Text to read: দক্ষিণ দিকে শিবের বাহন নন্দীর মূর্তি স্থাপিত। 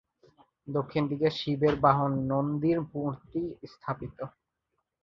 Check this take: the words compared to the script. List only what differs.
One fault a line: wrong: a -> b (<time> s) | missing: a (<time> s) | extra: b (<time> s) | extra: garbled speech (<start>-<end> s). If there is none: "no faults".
no faults